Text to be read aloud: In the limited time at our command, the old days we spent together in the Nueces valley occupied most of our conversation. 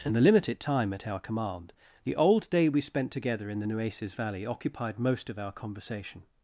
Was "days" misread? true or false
true